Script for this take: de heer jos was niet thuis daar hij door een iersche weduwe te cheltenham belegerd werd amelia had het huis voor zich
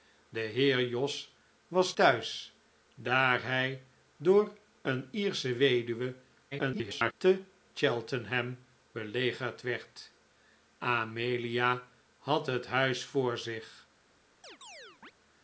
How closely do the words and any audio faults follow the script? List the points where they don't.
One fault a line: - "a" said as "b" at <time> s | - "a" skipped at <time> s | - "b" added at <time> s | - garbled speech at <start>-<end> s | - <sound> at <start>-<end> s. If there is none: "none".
- "niet" skipped at 1.9 s
- garbled speech at 6.5-7.1 s
- chirp at 14.4-15.1 s